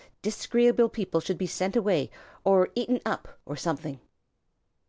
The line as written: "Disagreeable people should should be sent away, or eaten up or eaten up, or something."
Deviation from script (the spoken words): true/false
true